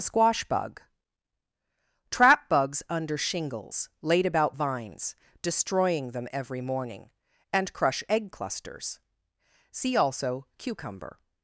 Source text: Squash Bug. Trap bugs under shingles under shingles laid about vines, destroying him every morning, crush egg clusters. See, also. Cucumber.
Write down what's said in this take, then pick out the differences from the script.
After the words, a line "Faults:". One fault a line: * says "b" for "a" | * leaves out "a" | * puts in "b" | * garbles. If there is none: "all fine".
Squash Bug. Trap bugs under shingles laid about vines, destroying them every morning, and crush egg clusters. See, also. Cucumber.
Faults:
* leaves out "under shingles"
* says "them" for "him"
* puts in "and"